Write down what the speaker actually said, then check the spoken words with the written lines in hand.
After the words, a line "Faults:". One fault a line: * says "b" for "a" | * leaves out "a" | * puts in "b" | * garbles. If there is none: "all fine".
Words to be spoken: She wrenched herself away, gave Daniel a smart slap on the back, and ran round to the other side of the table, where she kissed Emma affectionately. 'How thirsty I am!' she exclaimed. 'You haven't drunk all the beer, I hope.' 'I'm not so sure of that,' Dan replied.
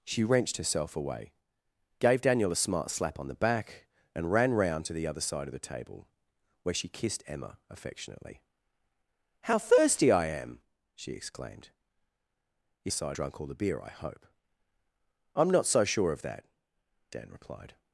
She wrenched herself away, gave Daniel a smart slap on the back, and ran round to the other side of the table, where she kissed Emma affectionately. 'How thirsty I am!' she exclaimed. 'You side drunk all the beer, I hope.' 'I'm not so sure of that,' Dan replied.
Faults:
* says "side" for "haven't"